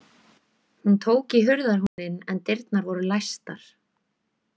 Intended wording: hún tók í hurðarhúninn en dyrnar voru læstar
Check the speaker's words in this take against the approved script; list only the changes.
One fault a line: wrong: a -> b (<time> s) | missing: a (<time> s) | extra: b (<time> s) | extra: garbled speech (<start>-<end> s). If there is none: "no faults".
no faults